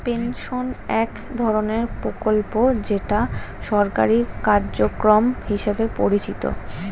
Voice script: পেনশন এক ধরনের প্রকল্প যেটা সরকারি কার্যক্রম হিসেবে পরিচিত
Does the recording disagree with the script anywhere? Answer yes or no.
no